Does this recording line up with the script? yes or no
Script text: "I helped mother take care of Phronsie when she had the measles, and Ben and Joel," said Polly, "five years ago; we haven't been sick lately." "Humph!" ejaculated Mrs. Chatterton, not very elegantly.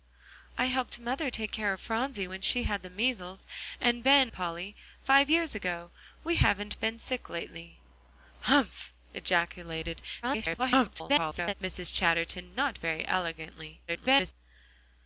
no